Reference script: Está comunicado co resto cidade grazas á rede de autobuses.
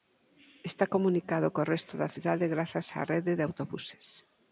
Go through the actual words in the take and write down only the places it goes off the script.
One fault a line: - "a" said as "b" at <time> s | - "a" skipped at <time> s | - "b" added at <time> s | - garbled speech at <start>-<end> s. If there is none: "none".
- "da" added at 2.0 s